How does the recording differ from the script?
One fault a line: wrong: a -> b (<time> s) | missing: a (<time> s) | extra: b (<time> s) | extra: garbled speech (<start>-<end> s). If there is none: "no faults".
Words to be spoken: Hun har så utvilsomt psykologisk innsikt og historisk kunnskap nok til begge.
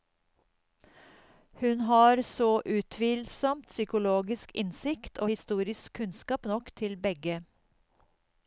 no faults